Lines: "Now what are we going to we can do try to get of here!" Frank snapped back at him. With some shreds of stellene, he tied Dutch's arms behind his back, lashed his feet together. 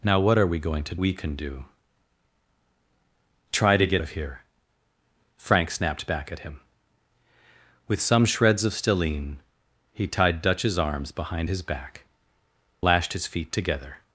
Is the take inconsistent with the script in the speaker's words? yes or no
no